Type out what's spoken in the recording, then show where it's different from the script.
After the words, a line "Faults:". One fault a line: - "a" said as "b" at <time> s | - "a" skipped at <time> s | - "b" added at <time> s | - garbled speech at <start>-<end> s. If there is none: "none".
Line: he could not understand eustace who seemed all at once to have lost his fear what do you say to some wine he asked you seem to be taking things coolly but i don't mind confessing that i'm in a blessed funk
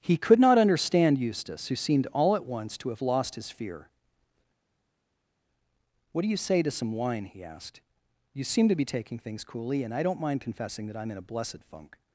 he could not understand eustace who seemed all at once to have lost his fear what do you say to some wine he asked you seem to be taking things coolly and i don't mind confessing that i'm in a blessed funk
Faults:
- "but" said as "and" at 9.8 s